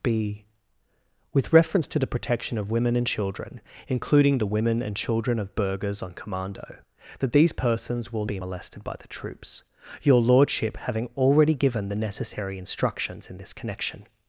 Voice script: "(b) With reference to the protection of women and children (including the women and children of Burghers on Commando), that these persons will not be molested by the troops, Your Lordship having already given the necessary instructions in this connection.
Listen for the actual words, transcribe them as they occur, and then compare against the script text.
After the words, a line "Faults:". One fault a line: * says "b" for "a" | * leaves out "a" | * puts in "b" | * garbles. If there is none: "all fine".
"(b) With reference to the protection of women and children (including the women and children of Burghers on Commando), that these persons will be molested by the troops, Your Lordship having already given the necessary instructions in this connection.
Faults:
* leaves out "not"